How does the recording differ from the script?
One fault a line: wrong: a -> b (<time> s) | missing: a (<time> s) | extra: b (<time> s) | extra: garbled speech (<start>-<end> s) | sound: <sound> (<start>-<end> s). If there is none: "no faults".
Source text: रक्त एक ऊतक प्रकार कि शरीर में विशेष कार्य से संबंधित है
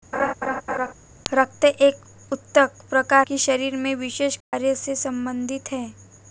sound: laugh (0.1-0.9 s)
sound: dropout (4.4-4.5 s)